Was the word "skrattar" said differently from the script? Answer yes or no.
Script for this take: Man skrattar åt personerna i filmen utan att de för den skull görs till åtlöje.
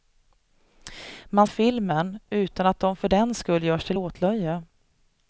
yes